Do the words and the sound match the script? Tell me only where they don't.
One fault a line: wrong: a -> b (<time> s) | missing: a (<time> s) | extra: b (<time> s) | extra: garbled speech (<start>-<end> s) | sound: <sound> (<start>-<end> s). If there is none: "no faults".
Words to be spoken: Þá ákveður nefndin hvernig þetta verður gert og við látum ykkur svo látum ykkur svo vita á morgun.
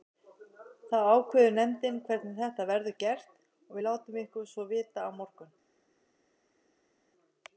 missing: látum ykkur svo (4.7 s)